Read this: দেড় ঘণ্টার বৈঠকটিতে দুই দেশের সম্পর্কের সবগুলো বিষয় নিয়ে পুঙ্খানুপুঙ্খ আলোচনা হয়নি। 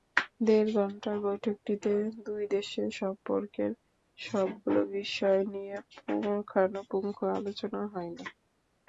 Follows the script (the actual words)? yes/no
yes